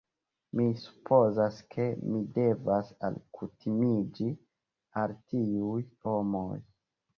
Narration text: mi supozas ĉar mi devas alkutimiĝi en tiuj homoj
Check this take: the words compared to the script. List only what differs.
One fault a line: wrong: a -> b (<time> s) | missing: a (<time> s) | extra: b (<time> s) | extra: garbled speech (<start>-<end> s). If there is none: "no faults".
wrong: ĉar -> ke (1.7 s)
wrong: en -> al (5.1 s)